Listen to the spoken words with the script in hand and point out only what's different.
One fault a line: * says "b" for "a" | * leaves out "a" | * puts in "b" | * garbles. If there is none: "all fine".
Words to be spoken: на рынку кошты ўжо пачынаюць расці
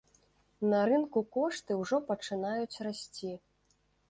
all fine